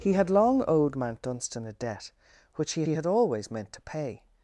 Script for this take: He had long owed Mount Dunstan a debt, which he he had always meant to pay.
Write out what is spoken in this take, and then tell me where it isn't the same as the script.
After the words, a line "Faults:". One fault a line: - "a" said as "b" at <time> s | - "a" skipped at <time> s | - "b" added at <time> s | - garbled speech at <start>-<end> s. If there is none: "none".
He had long owed Mount Dunstan a debt, which he he had always meant to pay.
Faults:
none